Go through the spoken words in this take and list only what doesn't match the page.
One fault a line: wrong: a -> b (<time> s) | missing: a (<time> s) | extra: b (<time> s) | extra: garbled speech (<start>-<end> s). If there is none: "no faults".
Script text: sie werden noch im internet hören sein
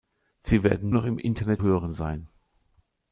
no faults